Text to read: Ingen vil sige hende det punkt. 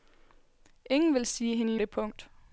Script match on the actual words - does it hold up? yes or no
yes